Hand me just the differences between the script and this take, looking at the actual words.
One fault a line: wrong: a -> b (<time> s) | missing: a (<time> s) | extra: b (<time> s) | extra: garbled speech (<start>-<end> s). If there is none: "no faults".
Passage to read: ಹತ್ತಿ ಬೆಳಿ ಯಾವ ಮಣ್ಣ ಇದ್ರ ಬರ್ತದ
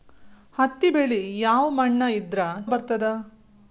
no faults